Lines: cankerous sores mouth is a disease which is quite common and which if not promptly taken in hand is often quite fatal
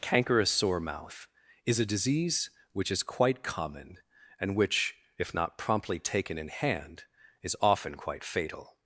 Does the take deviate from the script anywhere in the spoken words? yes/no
yes